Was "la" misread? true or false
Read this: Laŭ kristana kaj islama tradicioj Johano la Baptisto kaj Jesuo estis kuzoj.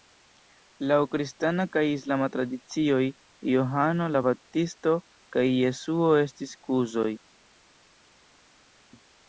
false